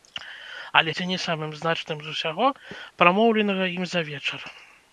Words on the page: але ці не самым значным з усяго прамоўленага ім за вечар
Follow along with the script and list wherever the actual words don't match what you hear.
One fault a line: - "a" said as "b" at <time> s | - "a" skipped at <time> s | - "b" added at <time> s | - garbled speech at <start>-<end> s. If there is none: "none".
none